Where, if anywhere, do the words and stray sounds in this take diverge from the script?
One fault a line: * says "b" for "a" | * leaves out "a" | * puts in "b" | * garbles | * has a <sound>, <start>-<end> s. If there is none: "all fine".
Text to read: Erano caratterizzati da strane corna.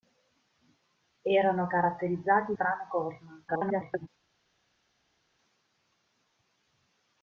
* leaves out "da"
* garbles